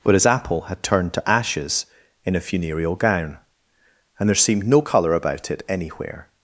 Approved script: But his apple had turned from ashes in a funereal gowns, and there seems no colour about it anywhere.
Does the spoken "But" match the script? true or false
true